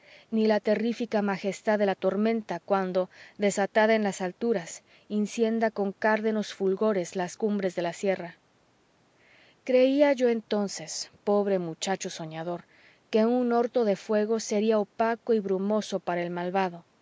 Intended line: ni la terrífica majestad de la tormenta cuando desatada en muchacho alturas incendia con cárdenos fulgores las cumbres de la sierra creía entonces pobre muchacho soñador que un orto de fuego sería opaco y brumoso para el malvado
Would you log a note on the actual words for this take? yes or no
yes